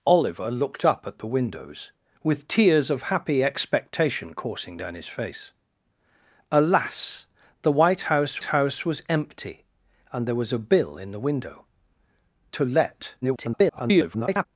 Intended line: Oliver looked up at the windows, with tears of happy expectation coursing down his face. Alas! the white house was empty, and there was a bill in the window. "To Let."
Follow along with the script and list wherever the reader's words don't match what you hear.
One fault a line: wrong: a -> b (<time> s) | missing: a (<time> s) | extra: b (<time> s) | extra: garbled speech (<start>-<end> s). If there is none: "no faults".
extra: house (8.4 s)
extra: garbled speech (13.2-14.5 s)